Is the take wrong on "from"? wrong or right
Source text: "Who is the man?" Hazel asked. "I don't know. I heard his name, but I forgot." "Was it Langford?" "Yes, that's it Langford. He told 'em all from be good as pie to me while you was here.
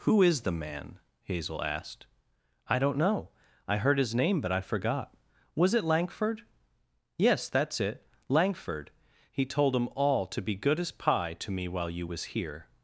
wrong